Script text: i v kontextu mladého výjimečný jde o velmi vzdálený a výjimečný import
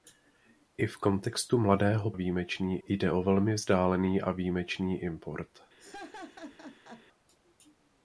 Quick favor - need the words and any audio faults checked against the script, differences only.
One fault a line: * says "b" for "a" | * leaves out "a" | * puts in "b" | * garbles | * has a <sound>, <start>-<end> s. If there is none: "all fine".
* has a laugh, 5.8-7.1 s